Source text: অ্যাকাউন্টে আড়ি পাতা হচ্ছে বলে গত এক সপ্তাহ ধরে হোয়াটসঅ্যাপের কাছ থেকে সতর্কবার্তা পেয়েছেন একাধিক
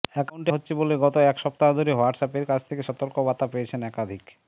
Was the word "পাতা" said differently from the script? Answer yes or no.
yes